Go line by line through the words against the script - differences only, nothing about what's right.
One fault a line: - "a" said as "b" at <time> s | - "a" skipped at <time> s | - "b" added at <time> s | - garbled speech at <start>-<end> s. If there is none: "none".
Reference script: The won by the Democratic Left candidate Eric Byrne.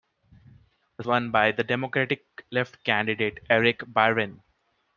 none